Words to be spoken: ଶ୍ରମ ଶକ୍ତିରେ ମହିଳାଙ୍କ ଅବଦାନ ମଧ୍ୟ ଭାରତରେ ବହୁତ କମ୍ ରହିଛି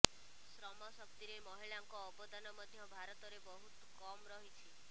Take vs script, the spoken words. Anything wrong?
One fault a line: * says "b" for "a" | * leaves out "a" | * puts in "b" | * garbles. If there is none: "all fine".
all fine